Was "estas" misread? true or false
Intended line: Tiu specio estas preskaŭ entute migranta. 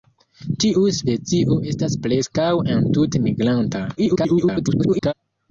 false